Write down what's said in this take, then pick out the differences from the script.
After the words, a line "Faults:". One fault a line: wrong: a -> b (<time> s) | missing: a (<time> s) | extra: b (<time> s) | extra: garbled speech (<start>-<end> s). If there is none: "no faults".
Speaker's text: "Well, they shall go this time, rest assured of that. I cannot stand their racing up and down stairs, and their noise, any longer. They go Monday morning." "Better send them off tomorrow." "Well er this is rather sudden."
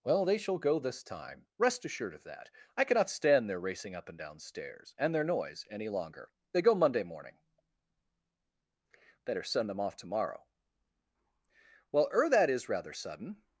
"Well, they shall go this time, rest assured of that. I cannot stand their racing up and down stairs, and their noise, any longer. They go Monday morning." "Better send them off tomorrow." "Well er that is rather sudden."
Faults:
wrong: this -> that (12.3 s)